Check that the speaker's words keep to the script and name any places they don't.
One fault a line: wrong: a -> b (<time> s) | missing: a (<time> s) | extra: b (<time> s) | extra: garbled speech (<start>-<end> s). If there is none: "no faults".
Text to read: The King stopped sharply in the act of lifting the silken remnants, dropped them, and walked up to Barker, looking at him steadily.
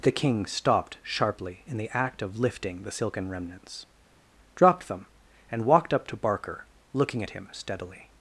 no faults